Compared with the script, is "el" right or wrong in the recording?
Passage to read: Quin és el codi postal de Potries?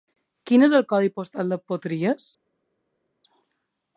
right